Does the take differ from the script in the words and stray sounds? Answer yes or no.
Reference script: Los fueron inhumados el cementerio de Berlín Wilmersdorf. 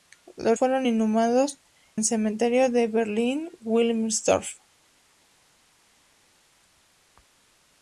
no